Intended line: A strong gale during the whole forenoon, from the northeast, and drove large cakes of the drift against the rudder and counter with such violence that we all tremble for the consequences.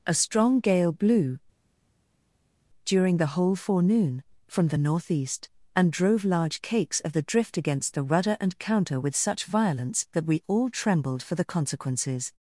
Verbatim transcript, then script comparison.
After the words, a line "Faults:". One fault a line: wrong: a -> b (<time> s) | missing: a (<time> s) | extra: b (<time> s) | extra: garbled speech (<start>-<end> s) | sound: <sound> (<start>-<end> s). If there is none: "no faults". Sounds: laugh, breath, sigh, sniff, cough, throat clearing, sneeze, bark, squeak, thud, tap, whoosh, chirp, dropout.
A strong gale blew, during the whole forenoon, from the northeast, and drove large cakes of the drift against the rudder and counter with such violence that we all trembled for the consequences.
Faults:
extra: blew (0.9 s)
wrong: tremble -> trembled (10.7 s)